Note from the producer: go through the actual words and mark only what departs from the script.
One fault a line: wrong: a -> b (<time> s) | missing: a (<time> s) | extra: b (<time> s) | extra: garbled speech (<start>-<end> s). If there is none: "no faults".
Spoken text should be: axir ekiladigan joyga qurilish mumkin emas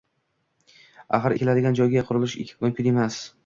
no faults